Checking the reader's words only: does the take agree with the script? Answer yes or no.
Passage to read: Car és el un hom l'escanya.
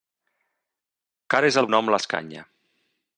yes